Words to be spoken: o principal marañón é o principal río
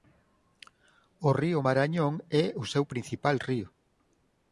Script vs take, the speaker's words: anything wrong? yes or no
yes